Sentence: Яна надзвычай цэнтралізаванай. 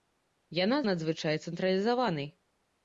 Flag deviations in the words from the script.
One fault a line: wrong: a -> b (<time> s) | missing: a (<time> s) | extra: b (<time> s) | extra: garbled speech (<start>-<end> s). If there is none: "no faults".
no faults